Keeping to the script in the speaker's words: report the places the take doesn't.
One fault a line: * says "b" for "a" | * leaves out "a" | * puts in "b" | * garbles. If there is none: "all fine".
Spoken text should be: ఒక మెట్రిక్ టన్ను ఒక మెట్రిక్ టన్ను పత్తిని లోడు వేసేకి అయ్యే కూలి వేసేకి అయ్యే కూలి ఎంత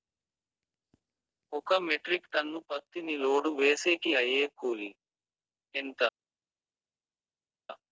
* leaves out "ఒక మెట్రిక్ టన్ను"
* leaves out "వేసేకి అయ్యే కూలి"